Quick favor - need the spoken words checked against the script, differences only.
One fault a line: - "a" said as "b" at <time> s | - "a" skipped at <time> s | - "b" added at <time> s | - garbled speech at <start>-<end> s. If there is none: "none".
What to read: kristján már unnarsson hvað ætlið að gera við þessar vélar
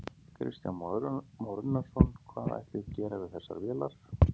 none